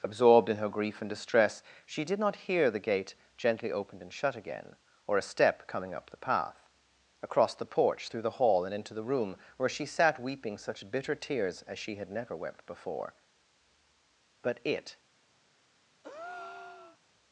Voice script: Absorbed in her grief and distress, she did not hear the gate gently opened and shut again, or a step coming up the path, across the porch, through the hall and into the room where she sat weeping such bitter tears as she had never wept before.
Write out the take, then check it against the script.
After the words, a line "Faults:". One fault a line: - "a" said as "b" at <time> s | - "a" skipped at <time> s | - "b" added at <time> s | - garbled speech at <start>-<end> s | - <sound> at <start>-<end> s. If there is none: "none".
Absorbed in her grief and distress, she did not hear the gate gently opened and shut again, or a step coming up the path, across the porch, through the hall and into the room where she sat weeping such bitter tears as she had never wept before. But it
Faults:
- "But it" added at 14.4 s
- breath at 16.0-17.0 s